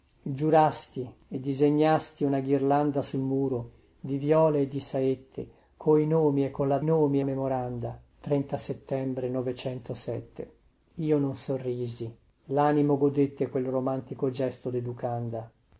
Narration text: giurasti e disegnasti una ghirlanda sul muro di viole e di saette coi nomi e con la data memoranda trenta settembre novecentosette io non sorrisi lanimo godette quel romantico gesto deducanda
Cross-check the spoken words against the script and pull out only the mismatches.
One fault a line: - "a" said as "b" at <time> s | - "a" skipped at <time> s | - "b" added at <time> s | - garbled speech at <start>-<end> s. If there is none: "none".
- "data" said as "nomi" at 6.8 s